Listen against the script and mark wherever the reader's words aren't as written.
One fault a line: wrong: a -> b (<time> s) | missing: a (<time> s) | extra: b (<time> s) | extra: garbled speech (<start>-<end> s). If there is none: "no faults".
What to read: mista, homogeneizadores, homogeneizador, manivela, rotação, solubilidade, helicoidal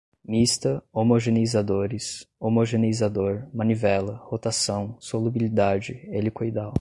no faults